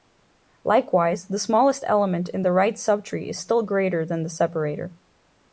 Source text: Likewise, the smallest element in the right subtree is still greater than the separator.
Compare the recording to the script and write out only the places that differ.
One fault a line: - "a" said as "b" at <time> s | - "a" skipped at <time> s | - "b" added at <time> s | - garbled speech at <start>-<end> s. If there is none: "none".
none